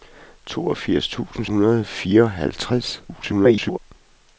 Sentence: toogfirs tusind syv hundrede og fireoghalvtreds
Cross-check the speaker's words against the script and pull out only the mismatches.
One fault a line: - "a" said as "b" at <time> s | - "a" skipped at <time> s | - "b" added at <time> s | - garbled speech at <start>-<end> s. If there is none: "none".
- "syv" skipped at 1.4 s
- garbled speech at 3.1-3.8 s